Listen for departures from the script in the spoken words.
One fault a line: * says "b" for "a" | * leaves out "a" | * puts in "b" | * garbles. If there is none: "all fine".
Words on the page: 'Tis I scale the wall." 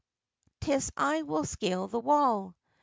* puts in "will"